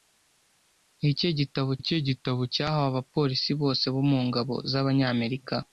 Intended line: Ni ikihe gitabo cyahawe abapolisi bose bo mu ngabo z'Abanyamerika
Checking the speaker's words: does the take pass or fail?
fail